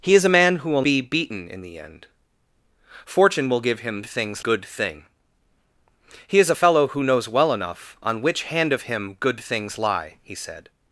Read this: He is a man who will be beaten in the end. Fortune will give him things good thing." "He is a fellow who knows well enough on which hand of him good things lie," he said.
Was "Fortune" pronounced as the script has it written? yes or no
yes